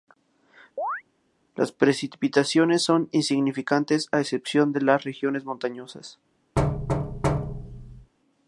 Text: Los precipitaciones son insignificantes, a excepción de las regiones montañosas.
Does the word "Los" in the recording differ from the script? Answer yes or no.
yes